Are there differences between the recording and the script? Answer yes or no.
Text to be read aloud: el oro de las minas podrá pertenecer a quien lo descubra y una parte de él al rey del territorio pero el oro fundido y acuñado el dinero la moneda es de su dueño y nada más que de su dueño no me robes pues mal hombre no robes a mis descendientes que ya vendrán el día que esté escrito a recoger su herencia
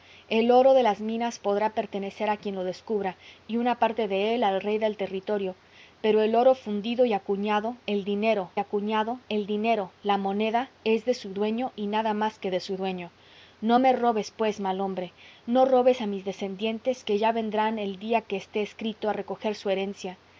yes